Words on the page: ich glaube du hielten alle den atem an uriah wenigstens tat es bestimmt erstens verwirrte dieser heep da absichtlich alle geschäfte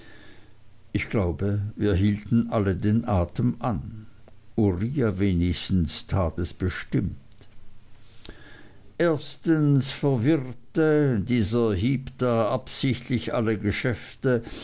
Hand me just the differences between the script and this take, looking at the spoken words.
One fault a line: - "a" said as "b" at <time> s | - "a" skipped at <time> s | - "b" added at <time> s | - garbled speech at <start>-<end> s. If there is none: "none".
- "du" said as "wir" at 1.7 s